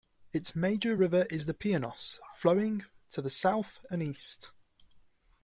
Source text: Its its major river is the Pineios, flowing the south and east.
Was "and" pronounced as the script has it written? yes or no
yes